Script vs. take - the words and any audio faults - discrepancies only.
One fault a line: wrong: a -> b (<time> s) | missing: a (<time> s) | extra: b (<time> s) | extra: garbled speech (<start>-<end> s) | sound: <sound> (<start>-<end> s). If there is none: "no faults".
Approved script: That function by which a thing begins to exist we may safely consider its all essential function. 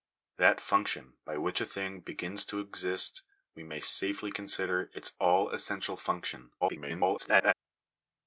extra: garbled speech (6.6-7.5 s)